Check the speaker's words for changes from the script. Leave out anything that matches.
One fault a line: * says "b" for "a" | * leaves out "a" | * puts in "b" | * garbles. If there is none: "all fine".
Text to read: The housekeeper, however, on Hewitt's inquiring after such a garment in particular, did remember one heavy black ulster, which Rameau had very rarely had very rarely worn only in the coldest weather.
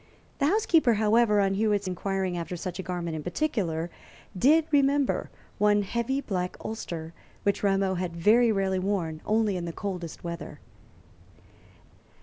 * leaves out "had very rarely"